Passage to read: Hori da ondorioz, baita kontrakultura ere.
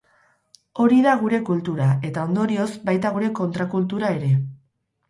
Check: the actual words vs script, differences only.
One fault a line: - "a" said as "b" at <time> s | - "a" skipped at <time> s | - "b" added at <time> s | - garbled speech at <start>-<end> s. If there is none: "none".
- "gure kultura eta" added at 1.2 s
- "gure" added at 3.2 s